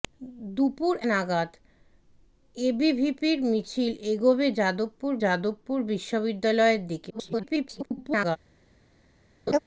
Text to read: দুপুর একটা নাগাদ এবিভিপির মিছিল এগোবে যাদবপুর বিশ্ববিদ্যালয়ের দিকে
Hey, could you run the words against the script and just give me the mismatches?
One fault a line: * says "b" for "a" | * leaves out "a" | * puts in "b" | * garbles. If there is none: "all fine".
* leaves out "একটা"
* puts in "যাদবপুর"
* garbles